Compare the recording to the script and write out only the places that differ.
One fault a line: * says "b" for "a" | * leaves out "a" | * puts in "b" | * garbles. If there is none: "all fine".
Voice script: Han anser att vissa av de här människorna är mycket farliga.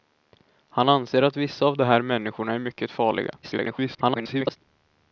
* garbles